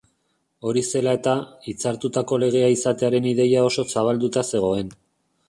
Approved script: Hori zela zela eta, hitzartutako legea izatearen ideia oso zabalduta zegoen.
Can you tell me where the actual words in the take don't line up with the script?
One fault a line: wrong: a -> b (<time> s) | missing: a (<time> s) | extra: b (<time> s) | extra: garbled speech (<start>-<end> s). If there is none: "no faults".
missing: zela (1.1 s)